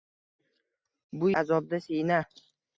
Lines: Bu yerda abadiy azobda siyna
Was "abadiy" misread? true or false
true